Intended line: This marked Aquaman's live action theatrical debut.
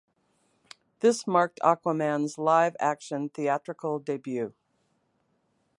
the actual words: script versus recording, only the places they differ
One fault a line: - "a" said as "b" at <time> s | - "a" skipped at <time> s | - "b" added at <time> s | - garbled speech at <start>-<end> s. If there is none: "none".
none